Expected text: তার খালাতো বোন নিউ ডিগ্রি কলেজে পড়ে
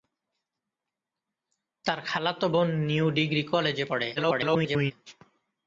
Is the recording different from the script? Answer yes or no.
yes